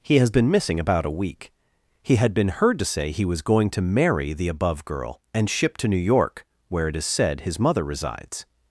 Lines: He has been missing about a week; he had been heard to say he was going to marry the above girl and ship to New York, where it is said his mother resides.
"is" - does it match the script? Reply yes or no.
yes